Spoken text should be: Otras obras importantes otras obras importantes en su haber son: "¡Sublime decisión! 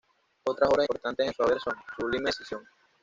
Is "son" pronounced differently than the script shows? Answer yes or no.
no